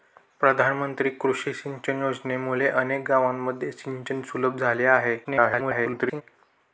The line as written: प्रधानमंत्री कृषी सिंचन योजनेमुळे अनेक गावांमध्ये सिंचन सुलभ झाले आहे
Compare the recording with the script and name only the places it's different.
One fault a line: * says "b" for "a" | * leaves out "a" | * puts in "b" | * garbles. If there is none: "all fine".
* garbles